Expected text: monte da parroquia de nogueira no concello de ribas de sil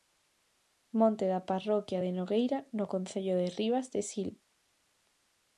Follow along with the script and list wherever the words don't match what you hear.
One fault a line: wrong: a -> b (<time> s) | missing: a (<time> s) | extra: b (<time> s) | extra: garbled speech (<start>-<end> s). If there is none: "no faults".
no faults